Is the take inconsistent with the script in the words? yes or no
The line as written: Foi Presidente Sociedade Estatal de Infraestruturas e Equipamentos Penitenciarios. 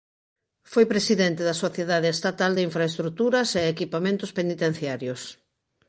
yes